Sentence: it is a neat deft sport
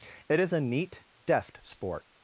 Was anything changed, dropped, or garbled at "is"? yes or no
no